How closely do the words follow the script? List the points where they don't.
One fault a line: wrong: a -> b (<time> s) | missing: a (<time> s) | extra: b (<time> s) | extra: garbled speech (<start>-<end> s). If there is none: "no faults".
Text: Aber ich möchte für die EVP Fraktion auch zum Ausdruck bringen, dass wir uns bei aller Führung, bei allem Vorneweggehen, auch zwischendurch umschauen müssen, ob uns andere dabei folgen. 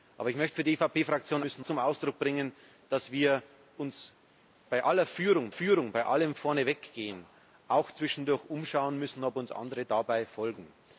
wrong: auch -> müssen (1.4 s)
extra: Führung (5.5 s)